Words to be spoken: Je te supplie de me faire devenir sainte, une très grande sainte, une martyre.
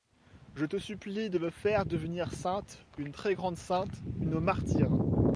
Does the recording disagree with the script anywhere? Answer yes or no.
no